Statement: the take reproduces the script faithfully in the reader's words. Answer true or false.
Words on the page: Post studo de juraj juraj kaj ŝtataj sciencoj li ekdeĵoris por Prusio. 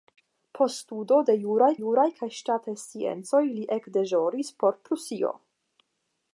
true